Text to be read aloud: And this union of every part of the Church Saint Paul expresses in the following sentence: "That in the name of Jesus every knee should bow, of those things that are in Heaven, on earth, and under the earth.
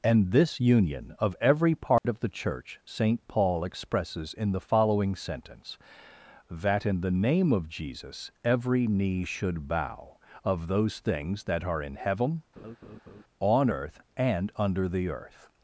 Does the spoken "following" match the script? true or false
true